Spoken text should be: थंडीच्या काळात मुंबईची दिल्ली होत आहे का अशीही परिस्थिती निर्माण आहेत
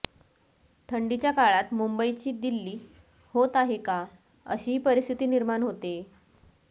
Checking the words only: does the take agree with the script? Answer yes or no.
no